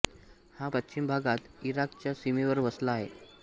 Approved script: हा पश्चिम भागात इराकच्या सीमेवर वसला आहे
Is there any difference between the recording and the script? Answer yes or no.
no